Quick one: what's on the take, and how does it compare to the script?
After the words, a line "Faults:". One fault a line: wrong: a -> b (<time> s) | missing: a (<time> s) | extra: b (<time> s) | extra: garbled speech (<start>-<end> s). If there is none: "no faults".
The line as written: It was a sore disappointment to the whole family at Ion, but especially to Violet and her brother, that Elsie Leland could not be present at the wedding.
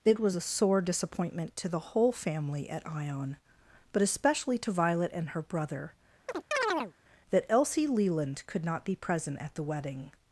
It was a sore disappointment to the whole family at Ion, but especially to Violet and her brother, that Elsie Leland could not be present at the wedding.
Faults:
no faults